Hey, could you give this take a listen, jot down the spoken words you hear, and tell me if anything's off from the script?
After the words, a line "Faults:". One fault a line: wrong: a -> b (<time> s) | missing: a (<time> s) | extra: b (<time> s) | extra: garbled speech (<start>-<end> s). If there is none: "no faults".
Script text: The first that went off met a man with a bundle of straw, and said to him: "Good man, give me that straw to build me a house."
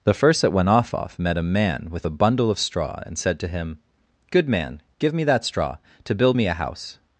The first that went off off met a man with a bundle of straw, and said to him: "Good man, give me that straw to build me a house."
Faults:
extra: off (0.9 s)